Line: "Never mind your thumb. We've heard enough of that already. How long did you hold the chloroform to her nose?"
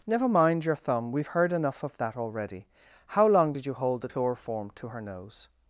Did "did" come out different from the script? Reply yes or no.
no